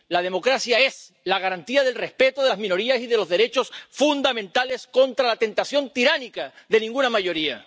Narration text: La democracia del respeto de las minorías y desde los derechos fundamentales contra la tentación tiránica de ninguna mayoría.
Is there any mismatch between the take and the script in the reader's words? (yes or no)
yes